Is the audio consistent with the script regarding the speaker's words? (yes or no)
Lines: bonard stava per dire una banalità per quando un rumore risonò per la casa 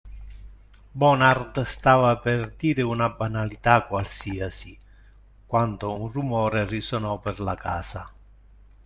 no